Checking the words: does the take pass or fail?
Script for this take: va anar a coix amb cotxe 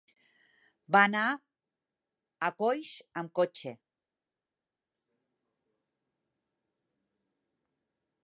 pass